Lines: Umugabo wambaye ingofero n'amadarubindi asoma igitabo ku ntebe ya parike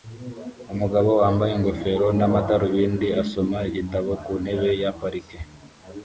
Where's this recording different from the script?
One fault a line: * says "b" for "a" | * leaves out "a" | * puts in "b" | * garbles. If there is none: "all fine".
all fine